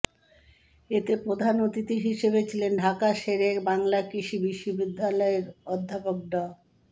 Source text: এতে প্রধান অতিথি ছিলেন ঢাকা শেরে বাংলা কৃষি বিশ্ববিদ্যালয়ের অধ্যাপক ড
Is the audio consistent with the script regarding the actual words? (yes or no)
no